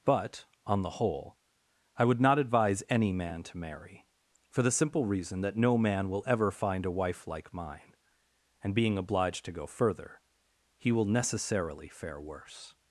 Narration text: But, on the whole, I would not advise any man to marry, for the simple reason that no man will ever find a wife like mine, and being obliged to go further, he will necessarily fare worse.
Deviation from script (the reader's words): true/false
false